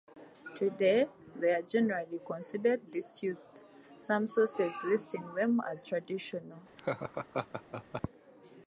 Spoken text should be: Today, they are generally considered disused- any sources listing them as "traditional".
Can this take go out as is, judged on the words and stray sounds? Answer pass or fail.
fail